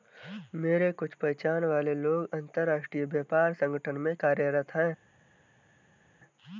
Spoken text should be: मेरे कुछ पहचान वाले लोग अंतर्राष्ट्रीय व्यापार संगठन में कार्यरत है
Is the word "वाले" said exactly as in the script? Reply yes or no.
yes